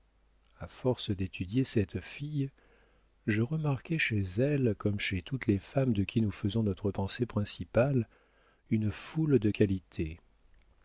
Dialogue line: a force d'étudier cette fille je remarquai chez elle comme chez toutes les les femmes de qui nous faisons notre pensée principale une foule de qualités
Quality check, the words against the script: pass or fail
fail